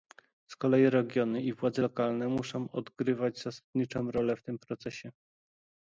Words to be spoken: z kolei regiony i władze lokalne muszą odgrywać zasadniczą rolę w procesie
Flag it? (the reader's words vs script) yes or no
yes